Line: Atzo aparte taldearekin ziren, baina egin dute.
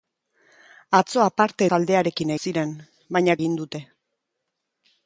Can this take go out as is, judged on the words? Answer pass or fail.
pass